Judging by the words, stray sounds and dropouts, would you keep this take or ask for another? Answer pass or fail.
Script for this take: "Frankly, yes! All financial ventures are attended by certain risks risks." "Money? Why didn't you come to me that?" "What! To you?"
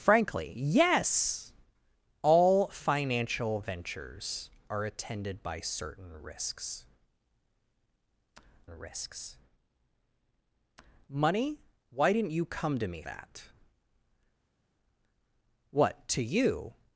pass